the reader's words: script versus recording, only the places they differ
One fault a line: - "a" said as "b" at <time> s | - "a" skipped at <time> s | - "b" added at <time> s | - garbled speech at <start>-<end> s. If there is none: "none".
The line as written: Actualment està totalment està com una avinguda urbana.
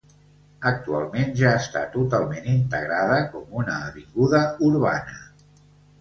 - "ja" added at 1.4 s
- "està" said as "integrada" at 2.5 s